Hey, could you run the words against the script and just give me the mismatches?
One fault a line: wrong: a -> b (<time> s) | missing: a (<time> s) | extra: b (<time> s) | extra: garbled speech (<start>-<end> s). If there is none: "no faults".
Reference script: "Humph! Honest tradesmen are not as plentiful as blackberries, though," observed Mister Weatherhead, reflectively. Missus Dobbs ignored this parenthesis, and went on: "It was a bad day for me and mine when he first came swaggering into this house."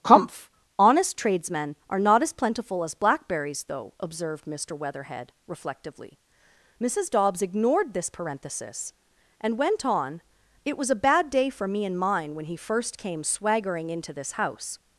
no faults